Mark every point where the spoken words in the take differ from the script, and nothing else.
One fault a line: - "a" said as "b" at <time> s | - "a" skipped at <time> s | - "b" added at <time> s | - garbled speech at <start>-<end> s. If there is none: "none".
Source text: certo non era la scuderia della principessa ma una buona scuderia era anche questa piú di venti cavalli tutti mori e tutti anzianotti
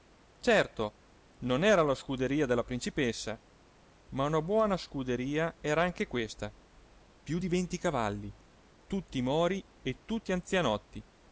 none